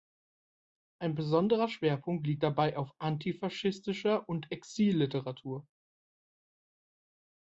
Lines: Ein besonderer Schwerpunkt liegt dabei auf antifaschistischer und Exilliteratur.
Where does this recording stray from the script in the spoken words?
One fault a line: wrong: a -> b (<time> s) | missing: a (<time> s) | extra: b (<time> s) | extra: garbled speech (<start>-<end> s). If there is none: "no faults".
no faults